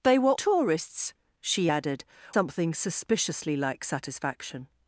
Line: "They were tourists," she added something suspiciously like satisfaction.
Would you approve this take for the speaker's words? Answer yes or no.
yes